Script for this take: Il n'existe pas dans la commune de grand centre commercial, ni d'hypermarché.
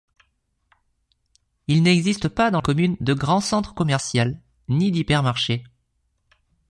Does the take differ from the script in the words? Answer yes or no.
yes